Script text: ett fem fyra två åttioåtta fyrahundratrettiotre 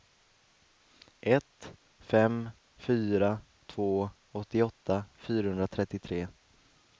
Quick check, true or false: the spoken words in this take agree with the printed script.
true